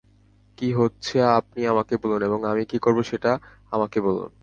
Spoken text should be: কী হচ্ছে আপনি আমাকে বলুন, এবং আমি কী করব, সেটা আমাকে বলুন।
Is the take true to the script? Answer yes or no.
yes